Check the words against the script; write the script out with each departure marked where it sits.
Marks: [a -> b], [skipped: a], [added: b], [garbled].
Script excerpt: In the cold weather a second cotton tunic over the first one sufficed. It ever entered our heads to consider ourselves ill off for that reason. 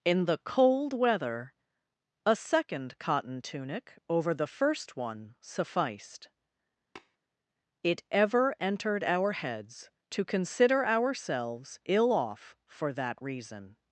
In the cold weather a second cotton tunic over the first one sufficed. It ever entered our heads to consider ourselves ill off for that reason.